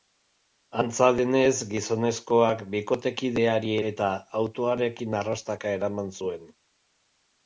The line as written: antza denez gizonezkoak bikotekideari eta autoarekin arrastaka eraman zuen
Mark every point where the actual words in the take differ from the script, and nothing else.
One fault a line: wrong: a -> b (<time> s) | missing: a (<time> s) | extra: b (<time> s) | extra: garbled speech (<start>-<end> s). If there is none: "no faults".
no faults